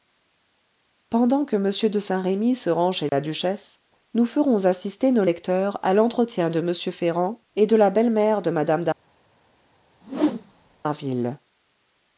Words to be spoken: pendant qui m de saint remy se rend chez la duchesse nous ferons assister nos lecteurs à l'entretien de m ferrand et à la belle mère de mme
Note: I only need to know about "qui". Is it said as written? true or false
false